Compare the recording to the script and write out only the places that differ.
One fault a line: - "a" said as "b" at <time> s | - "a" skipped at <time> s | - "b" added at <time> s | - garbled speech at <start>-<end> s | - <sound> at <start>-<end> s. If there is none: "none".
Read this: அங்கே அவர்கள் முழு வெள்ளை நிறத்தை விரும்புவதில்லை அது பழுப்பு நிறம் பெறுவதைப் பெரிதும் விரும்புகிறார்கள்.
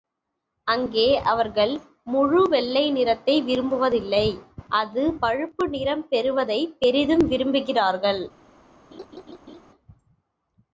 - laugh at 8.9-9.6 s